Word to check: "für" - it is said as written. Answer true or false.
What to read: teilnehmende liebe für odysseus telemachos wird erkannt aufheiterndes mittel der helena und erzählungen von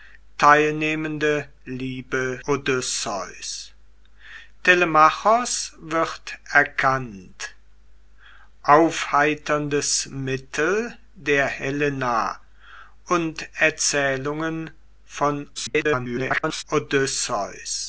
false